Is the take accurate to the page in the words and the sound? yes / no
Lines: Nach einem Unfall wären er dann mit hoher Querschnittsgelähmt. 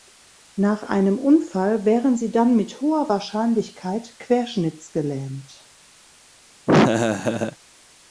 no